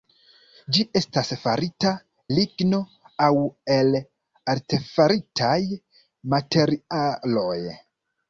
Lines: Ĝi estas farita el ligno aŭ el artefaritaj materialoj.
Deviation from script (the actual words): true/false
true